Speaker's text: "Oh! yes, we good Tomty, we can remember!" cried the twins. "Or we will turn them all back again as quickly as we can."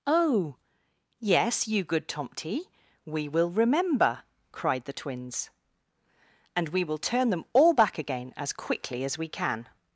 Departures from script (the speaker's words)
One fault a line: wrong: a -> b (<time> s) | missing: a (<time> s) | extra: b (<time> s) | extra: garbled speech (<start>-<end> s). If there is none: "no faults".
wrong: we -> you (1.7 s)
wrong: can -> will (3.3 s)
wrong: Or -> And (6.5 s)